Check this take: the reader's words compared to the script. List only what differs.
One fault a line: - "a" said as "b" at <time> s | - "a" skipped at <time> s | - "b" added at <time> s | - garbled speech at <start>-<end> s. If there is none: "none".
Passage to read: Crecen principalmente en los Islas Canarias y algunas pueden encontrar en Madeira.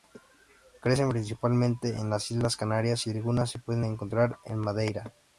- "los" said as "las" at 2.1 s
- "se" added at 3.5 s